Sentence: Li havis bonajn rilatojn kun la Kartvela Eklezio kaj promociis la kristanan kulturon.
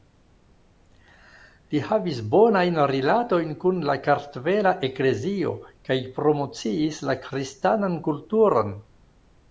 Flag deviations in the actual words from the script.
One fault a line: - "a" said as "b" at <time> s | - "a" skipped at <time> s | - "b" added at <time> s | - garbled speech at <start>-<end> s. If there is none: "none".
none